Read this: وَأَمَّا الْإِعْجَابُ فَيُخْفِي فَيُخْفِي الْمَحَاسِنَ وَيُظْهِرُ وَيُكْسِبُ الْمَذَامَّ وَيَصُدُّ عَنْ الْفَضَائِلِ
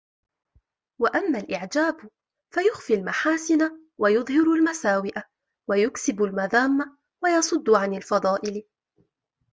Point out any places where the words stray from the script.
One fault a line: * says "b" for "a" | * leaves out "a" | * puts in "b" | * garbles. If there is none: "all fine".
* leaves out "فَيُخْفِي"
* puts in "الْمَسَاوِئَ"